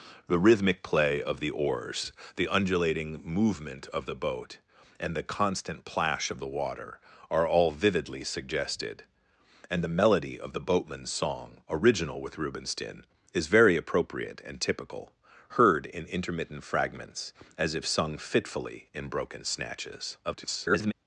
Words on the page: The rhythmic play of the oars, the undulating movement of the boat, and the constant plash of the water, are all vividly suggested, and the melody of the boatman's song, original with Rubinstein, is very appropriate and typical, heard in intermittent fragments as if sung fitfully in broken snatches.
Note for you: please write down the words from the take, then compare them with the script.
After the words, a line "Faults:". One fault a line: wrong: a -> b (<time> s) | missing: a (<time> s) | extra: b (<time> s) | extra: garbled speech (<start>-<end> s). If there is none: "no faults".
The rhythmic play of the oars, the undulating movement of the boat, and the constant plash of the water, are all vividly suggested, and the melody of the boatman's song, original with Rubinstein, is very appropriate and typical, heard in intermittent fragments as if sung fitfully in broken snatches. [garbled]
Faults:
extra: garbled speech (20.2-20.9 s)